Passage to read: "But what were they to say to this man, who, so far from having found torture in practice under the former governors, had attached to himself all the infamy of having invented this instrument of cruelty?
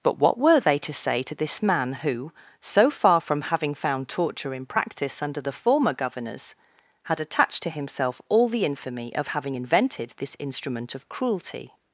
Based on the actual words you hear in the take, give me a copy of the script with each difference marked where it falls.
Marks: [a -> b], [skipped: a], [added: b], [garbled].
"But what were they to say to this man, who, so far from having found torture in practice under the former governors, had attached to himself all the infamy of having invented this instrument of cruelty?